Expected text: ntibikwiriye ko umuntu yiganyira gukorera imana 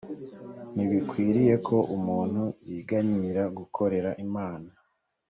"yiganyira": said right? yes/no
yes